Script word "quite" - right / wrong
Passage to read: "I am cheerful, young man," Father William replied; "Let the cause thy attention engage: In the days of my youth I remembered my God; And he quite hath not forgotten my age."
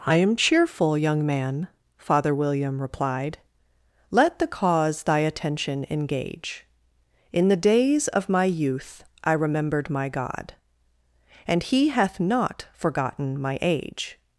wrong